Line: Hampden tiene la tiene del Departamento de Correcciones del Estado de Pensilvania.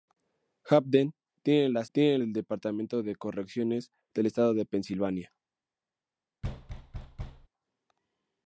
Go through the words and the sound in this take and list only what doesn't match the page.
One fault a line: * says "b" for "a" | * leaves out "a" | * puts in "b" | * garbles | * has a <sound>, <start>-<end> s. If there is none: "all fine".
* has a thud, 6.4-7.5 s